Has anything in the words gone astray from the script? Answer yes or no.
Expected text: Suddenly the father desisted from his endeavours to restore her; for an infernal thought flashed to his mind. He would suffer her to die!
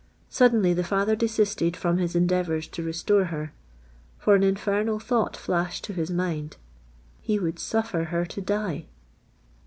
no